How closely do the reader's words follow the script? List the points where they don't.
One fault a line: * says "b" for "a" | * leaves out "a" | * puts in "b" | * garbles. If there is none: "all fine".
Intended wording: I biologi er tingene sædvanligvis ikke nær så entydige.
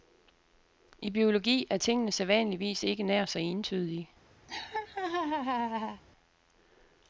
all fine